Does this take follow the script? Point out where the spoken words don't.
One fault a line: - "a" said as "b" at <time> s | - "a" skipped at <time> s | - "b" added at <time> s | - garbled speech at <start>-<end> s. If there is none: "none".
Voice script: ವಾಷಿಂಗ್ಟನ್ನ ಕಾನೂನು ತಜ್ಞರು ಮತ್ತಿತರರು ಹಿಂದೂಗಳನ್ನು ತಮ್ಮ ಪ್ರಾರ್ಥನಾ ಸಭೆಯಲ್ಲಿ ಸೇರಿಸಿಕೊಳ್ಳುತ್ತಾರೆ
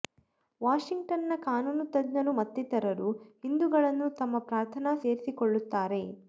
- "ಸಭೆಯಲ್ಲಿ" skipped at 4.9 s